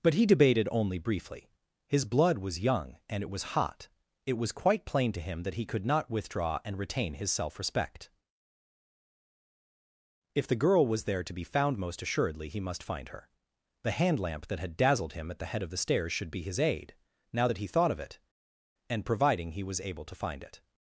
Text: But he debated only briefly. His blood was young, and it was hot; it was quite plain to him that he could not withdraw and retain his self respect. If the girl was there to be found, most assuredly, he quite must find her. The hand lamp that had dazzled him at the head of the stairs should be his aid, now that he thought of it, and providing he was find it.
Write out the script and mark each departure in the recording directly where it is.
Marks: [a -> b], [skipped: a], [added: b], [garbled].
But he debated only briefly. His blood was young, and it was hot; it was quite plain to him that he could not withdraw and retain his self respect. If the girl was there to be found, most assuredly, he [skipped: quite] must find her. The hand lamp that had dazzled him at the head of the stairs should be his aid, now that he thought of it, and providing he was [added: able to] find it.